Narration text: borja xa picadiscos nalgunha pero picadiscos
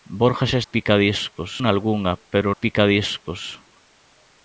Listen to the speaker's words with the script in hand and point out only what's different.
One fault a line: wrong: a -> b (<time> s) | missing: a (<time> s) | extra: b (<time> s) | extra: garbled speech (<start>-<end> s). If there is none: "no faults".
no faults